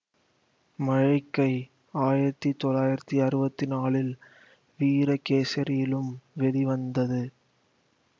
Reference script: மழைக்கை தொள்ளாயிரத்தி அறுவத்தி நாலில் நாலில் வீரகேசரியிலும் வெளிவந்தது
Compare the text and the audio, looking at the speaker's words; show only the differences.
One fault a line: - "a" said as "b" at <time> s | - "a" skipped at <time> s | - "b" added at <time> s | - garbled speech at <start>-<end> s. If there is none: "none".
- "ஆயிரத்தி" added at 2.0 s
- "நாலில்" skipped at 4.1 s